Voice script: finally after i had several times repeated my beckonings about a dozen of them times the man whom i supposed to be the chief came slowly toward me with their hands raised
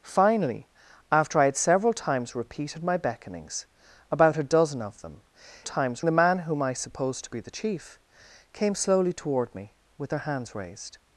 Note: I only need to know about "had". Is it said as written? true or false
true